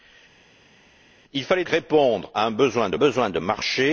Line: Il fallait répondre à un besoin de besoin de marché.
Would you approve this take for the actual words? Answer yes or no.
yes